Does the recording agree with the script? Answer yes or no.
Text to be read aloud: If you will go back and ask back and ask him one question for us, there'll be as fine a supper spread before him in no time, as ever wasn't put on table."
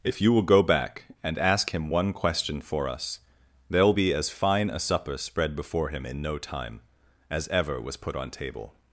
no